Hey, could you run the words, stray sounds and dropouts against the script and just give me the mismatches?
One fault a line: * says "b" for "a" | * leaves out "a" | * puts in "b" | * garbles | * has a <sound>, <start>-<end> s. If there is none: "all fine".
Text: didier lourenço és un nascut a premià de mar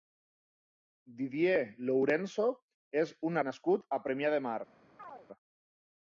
* has a chirp, 5.0-5.3 s